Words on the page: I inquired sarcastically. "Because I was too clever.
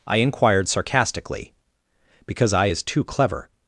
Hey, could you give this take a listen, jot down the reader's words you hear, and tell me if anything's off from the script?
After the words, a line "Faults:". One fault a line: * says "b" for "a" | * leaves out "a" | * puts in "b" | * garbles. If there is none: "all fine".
I inquired sarcastically. "Because I is too clever.
Faults:
* says "is" for "was"